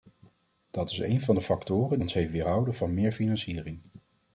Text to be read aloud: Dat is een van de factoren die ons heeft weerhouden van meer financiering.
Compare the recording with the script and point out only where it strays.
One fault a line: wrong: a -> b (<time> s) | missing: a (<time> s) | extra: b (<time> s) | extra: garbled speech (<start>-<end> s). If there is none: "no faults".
missing: die (2.0 s)